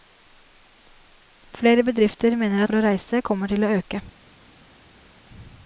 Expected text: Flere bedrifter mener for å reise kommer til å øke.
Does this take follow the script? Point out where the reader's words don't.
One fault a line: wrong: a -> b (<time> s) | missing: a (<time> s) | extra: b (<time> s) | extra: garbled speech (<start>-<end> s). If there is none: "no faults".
no faults